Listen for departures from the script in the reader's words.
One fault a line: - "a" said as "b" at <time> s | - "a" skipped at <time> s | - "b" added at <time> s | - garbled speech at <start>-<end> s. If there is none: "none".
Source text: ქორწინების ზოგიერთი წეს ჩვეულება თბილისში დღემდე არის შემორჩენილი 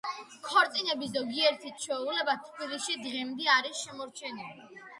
- "წეს" skipped at 1.7 s